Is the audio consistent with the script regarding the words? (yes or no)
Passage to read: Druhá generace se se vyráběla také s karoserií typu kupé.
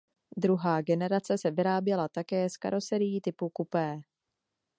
no